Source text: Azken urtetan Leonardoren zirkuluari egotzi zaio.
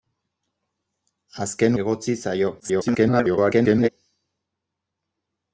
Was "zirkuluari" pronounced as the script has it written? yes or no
no